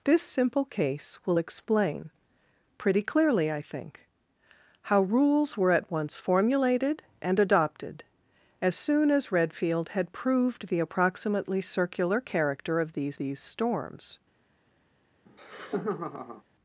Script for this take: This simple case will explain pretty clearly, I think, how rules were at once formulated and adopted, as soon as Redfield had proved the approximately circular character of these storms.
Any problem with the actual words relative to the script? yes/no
yes